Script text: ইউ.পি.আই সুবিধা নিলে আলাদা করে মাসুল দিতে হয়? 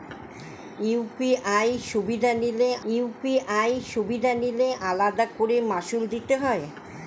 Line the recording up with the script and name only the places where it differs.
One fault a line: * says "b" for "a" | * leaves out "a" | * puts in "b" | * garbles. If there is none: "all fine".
* puts in "ইউ.পি.আই সুবিধা নিলে"